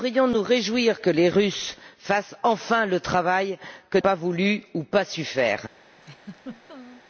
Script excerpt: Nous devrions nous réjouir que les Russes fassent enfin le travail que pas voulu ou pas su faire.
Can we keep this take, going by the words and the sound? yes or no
no